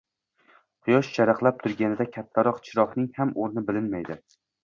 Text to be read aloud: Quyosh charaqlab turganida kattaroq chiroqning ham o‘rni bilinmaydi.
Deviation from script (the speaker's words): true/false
false